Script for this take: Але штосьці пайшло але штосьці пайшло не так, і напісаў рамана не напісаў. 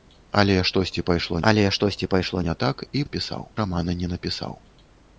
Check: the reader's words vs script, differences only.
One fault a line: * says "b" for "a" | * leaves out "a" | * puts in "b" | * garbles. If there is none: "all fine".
all fine